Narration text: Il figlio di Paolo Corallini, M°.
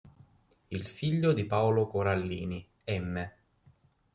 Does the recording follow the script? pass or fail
pass